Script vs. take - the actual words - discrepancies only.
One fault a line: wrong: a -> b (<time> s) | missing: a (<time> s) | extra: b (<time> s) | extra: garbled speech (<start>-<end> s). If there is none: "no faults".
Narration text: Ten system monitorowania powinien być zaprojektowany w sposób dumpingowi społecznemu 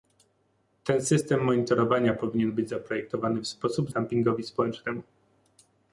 no faults